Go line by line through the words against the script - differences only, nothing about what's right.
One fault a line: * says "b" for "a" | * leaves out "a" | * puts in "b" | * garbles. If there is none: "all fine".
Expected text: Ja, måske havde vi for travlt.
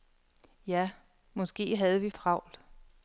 * leaves out "for"